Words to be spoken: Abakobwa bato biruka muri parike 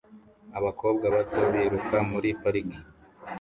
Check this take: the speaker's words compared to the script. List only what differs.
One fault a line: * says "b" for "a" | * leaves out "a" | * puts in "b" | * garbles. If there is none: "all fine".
all fine